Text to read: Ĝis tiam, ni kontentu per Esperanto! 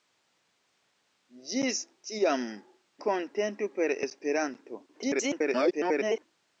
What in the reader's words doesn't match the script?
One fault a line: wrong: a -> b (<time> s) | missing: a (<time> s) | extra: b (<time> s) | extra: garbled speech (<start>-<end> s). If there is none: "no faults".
missing: ni (2.5 s)
extra: garbled speech (4.9-6.3 s)